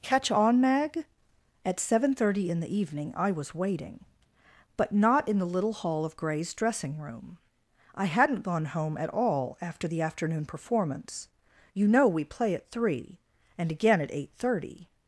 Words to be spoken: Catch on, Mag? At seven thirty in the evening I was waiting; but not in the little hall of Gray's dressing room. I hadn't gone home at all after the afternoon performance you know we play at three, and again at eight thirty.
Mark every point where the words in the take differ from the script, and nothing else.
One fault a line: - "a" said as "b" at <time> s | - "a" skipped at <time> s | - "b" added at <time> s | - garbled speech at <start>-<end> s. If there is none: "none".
none